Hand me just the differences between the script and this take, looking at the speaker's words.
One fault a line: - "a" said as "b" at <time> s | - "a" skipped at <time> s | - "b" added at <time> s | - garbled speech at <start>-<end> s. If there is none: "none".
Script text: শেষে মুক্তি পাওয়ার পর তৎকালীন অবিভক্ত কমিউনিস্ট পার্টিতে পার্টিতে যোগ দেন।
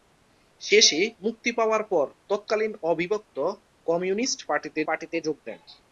none